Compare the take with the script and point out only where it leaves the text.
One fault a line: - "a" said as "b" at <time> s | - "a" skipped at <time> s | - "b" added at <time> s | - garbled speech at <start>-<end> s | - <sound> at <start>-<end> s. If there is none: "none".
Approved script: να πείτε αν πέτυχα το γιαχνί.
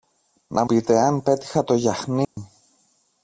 - dropout at 2.2-2.4 s